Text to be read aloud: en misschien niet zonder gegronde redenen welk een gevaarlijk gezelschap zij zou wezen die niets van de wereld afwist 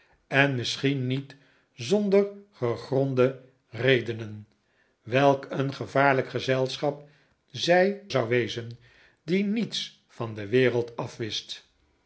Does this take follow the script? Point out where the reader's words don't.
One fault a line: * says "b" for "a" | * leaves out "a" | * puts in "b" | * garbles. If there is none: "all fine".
all fine